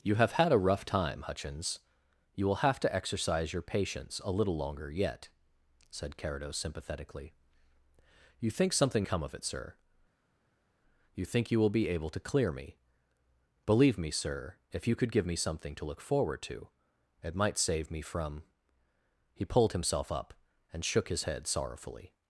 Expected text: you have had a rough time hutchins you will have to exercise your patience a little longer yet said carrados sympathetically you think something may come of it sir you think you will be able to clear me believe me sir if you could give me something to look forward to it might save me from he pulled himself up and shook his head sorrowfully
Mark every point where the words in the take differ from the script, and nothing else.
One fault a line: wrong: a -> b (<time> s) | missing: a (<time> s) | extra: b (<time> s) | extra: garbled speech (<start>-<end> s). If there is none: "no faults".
missing: may (9.1 s)